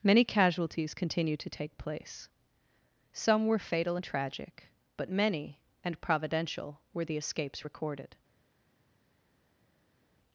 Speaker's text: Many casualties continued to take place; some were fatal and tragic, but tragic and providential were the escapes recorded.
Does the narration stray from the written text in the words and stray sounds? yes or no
yes